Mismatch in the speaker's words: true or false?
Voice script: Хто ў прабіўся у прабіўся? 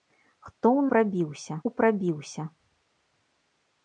false